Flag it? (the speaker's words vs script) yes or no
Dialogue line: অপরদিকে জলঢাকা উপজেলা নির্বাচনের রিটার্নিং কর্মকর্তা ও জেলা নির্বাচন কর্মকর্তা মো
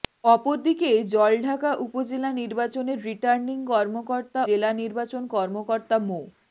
yes